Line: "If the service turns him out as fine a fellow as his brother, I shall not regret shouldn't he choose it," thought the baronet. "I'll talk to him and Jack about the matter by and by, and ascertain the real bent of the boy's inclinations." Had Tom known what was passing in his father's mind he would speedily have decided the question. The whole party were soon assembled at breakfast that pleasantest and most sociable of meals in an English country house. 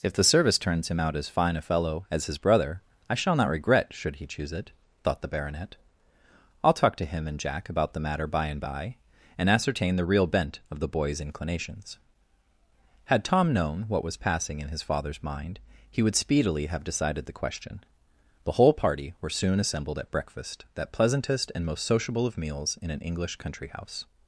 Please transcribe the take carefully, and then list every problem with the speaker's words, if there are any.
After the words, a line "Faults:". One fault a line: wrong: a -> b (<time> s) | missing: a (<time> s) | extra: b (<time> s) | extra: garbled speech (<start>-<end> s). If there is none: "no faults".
"If the service turns him out as fine a fellow as his brother, I shall not regret should he choose it," thought the baronet. "I'll talk to him and Jack about the matter by and by, and ascertain the real bent of the boy's inclinations." Had Tom known what was passing in his father's mind he would speedily have decided the question. The whole party were soon assembled at breakfast that pleasantest and most sociable of meals in an English country house.
Faults:
wrong: shouldn't -> should (3.9 s)